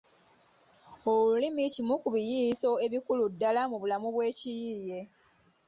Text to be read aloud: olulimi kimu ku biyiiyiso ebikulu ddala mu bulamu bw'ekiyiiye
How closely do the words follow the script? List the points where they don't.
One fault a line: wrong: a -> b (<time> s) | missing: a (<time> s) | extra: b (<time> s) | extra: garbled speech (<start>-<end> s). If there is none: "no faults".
no faults